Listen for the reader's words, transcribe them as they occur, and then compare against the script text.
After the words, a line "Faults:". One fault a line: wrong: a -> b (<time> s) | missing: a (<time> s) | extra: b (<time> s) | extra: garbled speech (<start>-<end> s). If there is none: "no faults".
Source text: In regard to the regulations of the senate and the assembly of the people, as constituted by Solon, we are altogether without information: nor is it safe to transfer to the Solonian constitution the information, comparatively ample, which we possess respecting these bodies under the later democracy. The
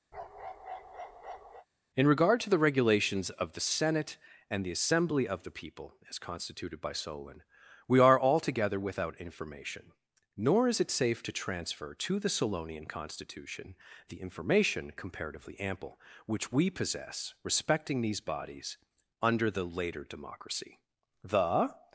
In regard to the regulations of the senate and the assembly of the people, as constituted by Solon, we are altogether without information: nor is it safe to transfer to the Solonian constitution the information, comparatively ample, which we possess respecting these bodies under the later democracy. The
Faults:
no faults